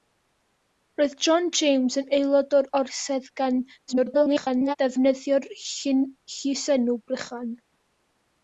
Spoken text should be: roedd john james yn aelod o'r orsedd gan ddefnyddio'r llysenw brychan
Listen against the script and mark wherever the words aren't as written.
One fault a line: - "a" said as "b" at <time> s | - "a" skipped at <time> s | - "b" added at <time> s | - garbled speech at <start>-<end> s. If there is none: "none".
- garbled speech at 3.9-4.8 s